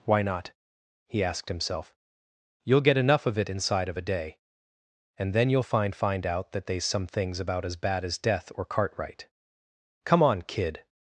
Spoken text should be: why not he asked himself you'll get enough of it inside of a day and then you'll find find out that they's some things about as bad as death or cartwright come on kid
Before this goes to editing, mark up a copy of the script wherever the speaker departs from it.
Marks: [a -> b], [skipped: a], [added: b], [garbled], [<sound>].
why not he asked himself you'll get enough of it inside of a day and then you'll find find out that they's some things about as bad as death or cartwright come on kid